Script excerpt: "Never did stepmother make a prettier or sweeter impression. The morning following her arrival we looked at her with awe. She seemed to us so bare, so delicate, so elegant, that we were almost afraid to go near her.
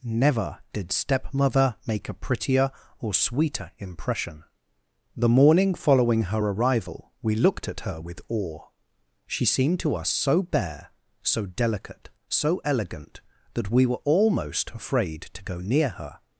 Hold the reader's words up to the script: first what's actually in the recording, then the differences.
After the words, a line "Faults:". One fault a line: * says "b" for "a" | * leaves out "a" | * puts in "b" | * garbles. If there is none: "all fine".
"Never did stepmother make a prettier or sweeter impression. The morning following her arrival we looked at her with awe. She seemed to us so bare, so delicate, so elegant, that we were almost afraid to go near her.
Faults:
all fine